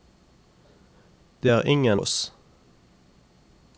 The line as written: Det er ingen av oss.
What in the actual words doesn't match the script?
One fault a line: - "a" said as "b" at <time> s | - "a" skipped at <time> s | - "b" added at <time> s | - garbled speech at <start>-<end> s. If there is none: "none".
- "av" skipped at 2.0 s